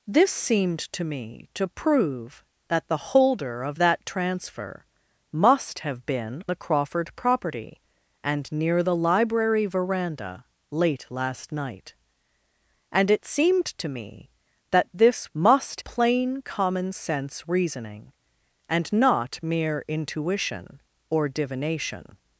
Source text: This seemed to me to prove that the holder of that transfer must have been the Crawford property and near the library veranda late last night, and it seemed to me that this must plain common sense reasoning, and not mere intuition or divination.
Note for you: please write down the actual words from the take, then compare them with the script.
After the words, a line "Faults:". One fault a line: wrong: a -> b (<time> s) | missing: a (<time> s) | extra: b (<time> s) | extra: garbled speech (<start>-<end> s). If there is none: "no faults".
This seemed to me to prove that the holder of that transfer must have been the Crawford property and near the library veranda late last night, and it seemed to me that this must plain common sense reasoning, and not mere intuition or divination.
Faults:
no faults